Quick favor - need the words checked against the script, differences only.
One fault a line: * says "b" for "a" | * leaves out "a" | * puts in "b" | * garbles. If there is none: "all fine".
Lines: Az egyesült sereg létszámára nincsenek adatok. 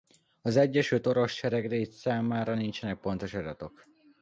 * puts in "orosz"
* puts in "pontos"